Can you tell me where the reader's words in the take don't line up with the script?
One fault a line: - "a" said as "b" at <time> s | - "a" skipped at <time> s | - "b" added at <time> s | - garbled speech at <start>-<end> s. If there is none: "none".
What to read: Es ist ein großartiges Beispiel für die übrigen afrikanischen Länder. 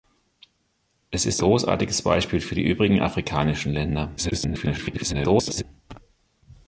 - "ein" skipped at 1.4 s
- garbled speech at 4.2-5.6 s